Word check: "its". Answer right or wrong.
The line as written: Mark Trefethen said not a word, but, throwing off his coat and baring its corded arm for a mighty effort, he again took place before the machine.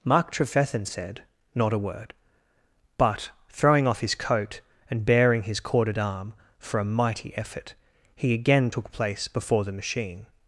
wrong